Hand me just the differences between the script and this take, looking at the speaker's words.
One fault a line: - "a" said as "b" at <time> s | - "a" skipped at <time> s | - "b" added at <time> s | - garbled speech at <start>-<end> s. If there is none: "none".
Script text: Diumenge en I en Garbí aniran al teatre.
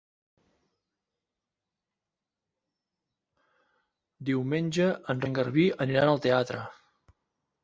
none